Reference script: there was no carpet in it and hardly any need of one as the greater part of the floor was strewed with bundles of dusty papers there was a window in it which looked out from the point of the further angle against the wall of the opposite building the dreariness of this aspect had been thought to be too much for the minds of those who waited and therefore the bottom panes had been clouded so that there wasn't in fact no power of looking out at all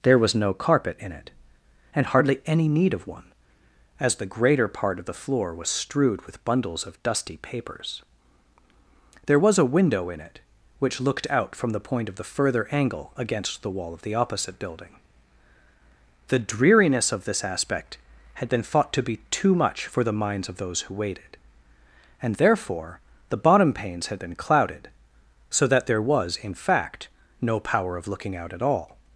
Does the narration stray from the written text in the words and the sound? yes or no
yes